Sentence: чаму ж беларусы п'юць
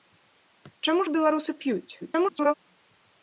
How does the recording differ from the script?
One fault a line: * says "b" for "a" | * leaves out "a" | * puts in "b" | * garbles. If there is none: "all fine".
* garbles